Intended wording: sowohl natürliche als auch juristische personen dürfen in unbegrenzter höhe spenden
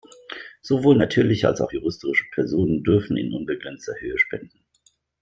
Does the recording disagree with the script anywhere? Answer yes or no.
no